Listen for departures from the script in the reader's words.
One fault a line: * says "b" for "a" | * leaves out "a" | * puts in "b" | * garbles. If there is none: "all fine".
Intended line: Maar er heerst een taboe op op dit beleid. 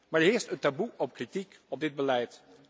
* puts in "kritiek"